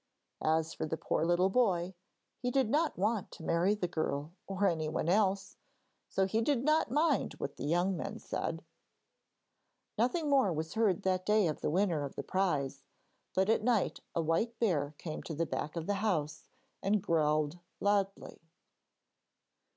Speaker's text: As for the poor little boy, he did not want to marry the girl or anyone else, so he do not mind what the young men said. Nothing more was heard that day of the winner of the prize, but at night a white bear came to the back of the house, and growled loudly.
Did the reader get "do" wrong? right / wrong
wrong